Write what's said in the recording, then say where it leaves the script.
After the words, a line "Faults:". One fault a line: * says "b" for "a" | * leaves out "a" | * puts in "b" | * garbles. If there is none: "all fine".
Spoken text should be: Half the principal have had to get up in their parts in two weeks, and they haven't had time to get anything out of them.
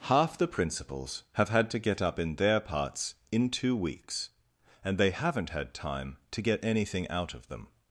Half the principals have had to get up in their parts in two weeks, and they haven't had time to get anything out of them.
Faults:
* says "principals" for "principal"